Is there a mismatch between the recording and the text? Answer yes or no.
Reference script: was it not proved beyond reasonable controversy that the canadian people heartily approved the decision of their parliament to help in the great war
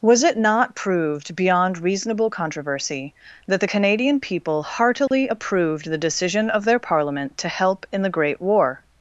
no